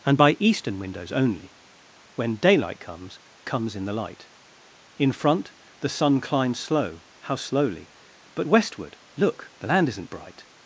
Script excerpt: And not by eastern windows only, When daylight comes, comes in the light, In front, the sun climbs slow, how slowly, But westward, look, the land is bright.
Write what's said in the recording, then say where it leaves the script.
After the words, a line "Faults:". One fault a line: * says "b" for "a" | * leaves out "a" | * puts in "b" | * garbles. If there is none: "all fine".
And by eastern windows only, When daylight comes, comes in the light, In front, the sun climbs slow, how slowly, But westward, look, the land isn't bright.
Faults:
* leaves out "not"
* says "isn't" for "is"